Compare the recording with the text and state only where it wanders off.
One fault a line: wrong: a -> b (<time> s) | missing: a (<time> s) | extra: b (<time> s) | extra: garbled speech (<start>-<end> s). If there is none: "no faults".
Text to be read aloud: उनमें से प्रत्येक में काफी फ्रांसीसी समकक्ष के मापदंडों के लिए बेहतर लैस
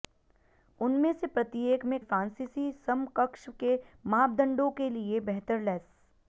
missing: काफी (2.0 s)